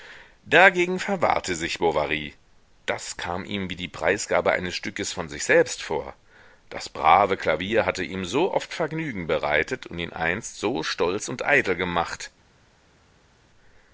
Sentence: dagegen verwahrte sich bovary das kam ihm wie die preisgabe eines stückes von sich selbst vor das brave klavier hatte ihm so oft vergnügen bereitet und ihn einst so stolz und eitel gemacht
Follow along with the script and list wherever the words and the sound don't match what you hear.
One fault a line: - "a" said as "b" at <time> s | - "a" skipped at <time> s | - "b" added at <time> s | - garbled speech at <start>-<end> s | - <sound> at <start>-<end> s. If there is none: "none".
none